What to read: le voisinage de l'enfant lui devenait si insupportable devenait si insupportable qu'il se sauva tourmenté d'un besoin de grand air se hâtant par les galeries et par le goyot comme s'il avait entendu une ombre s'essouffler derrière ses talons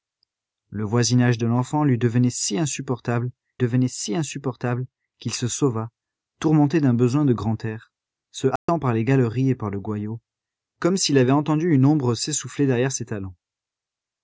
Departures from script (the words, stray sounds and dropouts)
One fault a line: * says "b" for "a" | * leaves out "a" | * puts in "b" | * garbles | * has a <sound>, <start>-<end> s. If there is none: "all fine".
* has a dropout, 8.6-8.7 s